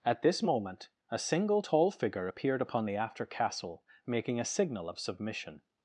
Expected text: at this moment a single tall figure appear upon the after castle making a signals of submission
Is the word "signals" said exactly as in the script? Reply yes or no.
no